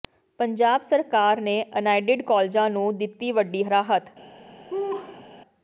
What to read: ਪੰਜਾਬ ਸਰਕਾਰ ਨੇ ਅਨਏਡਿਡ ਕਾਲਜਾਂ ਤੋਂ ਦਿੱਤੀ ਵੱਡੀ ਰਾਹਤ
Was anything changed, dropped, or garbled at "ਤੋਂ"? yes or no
yes